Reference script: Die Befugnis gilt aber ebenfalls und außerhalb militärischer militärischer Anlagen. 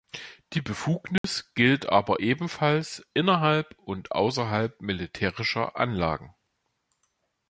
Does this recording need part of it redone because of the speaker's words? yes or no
yes